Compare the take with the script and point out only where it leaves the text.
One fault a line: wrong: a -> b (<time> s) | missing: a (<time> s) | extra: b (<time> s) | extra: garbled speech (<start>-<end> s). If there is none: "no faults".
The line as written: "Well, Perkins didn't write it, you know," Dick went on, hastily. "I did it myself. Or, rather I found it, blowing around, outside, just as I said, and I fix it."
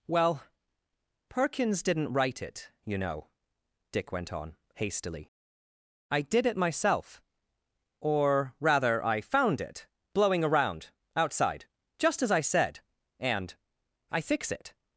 no faults